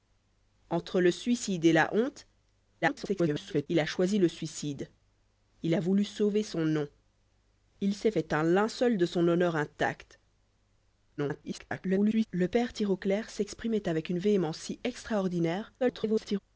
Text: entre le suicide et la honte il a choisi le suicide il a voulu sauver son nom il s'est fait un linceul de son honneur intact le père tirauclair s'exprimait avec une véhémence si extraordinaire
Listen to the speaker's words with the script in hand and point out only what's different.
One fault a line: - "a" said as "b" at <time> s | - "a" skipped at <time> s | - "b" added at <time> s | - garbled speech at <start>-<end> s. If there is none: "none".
- garbled speech at 2.8-3.7 s
- garbled speech at 11.2-12.3 s
- garbled speech at 15.8-16.4 s